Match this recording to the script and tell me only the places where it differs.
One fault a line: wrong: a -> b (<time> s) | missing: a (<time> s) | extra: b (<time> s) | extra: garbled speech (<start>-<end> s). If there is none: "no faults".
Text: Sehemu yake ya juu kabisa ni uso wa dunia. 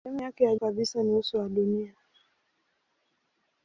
missing: juu (0.6 s)